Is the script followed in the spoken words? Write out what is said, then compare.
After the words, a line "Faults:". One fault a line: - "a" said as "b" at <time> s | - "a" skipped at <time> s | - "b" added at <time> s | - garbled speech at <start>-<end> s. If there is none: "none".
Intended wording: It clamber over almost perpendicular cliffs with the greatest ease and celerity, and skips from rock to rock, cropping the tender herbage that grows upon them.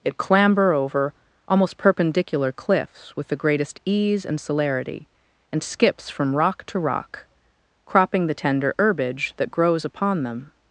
It clamber over almost perpendicular cliffs with the greatest ease and celerity, and skips from rock to rock, cropping the tender herbage that grows upon them.
Faults:
none